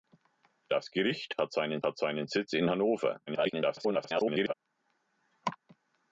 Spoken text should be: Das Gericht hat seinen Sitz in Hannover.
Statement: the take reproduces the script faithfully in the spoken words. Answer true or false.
false